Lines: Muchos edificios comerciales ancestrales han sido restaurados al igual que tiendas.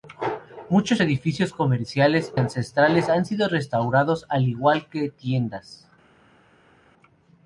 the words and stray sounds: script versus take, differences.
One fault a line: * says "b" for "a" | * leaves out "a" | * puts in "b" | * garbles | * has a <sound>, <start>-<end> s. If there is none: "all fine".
all fine